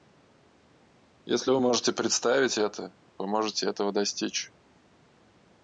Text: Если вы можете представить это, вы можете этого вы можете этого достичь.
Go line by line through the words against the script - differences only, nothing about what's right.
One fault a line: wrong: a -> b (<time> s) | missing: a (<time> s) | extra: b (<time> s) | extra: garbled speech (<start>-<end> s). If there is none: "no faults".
missing: вы можете этого (3.9 s)